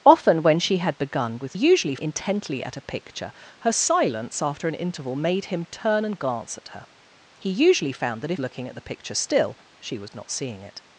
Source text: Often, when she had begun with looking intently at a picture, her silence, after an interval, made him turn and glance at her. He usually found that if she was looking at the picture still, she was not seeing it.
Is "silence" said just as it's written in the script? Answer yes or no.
yes